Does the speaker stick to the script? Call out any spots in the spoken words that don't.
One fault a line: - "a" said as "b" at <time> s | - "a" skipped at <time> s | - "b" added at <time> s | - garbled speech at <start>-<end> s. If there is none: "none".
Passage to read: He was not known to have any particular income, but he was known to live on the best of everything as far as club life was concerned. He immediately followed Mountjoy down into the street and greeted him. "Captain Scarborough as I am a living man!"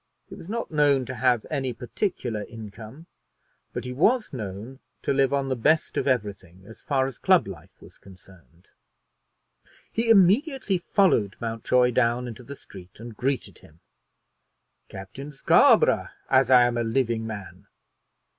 none